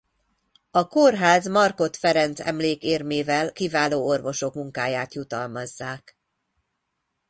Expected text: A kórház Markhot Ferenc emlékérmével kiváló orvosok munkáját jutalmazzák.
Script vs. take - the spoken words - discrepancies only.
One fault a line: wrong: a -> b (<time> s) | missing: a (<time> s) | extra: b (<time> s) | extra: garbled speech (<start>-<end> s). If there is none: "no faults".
no faults